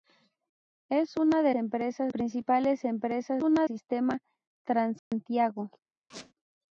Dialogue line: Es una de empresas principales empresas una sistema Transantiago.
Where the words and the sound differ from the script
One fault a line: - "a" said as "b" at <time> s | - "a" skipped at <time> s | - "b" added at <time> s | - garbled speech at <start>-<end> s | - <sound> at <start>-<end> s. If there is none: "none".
- dropout at 5.0-5.1 s
- squeak at 6.1-6.3 s